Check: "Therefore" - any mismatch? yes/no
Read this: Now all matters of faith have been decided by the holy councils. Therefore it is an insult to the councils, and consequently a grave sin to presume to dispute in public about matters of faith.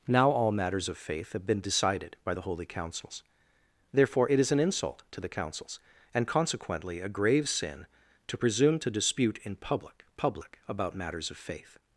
no